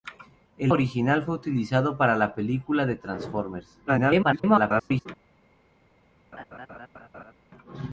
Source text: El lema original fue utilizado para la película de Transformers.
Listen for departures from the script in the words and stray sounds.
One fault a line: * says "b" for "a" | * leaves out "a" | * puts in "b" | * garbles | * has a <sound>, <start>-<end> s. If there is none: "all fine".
* leaves out "lema"
* garbles
* has a laugh, 6.3-7.3 s